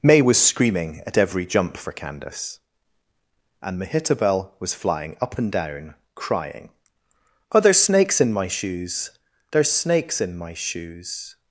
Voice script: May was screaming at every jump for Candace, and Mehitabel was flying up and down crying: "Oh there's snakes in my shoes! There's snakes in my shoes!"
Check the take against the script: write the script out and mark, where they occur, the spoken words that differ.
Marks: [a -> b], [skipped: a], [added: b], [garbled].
May was screaming at every jump for Candace, and Mehitabel was flying up and down crying: "Oh there's snakes in my shoes! There's snakes in my shoes!"